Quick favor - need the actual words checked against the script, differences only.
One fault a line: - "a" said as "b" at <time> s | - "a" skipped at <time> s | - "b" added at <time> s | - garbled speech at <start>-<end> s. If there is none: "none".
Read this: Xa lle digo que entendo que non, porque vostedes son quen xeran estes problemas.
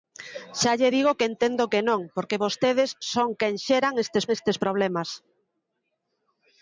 - "estes" added at 4.4 s